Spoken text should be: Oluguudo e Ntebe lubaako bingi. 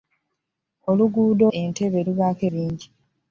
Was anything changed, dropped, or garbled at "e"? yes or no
no